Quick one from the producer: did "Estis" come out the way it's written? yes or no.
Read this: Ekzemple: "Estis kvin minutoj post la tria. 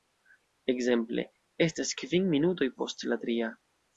no